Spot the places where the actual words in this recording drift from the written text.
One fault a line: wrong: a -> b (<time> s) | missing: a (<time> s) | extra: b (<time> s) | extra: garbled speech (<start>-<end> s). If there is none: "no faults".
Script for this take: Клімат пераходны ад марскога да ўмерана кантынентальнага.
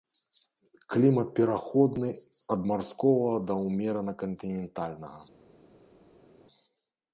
no faults